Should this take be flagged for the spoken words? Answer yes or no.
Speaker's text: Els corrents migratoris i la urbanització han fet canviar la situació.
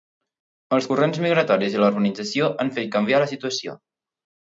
no